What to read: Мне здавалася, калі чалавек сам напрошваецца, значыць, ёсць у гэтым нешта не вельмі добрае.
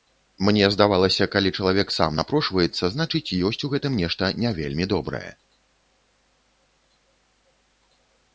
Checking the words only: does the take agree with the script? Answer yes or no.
yes